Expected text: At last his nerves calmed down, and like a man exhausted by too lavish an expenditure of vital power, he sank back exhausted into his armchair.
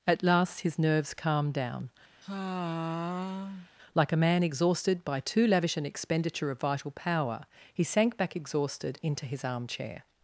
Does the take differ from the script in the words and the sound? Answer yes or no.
yes